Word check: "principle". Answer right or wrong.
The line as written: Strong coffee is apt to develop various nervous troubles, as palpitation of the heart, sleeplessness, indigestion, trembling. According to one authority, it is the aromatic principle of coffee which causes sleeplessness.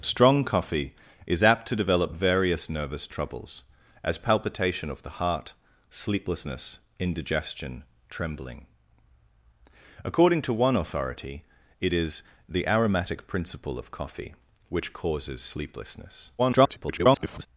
right